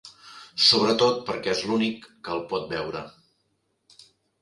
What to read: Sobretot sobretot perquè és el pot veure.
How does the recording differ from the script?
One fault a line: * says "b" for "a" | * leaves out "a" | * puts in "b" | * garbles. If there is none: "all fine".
* leaves out "sobretot"
* puts in "l'únic que"